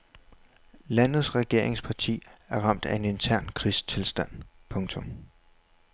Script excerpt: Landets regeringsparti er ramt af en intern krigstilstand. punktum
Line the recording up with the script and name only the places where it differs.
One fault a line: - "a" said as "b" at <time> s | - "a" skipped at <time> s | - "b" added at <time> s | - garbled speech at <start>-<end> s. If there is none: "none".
none